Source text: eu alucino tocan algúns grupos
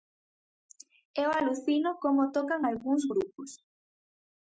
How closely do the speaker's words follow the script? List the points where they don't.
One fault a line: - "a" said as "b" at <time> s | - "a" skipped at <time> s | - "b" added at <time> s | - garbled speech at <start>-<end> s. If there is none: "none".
- "como" added at 2.0 s